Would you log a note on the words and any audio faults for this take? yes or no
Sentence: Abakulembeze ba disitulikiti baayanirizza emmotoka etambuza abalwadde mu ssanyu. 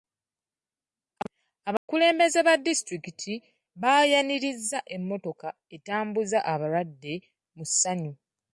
yes